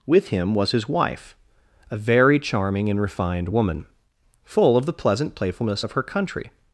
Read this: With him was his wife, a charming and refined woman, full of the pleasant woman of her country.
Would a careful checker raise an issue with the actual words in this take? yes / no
yes